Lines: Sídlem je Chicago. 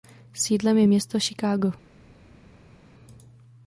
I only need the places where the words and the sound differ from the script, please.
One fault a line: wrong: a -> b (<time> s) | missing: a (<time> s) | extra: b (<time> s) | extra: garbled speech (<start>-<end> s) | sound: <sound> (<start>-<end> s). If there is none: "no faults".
extra: město (0.9 s)